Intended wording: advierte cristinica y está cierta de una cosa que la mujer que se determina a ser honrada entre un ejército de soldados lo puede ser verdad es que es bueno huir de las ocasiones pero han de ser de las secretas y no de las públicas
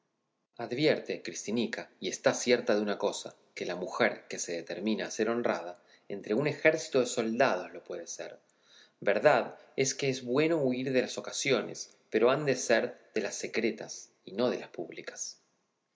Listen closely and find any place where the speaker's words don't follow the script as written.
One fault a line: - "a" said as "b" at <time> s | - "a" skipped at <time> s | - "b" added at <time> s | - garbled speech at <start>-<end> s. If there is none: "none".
none